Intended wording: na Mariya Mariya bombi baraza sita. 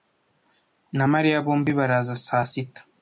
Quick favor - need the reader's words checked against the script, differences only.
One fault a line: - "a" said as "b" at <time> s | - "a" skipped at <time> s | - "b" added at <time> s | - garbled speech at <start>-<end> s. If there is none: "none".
- "Mariya" skipped at 1.4 s
- "saa" added at 2.2 s